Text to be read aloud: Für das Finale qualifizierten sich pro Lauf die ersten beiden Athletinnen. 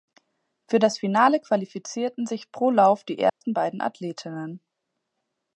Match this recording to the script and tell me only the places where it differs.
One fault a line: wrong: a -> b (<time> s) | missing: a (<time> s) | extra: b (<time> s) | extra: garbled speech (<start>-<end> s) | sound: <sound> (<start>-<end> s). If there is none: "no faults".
sound: dropout (3.3-3.4 s)